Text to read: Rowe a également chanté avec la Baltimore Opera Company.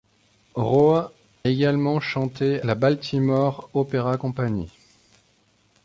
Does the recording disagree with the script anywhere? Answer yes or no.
yes